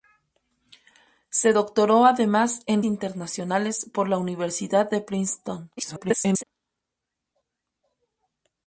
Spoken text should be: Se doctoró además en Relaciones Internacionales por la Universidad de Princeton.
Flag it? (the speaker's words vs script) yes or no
yes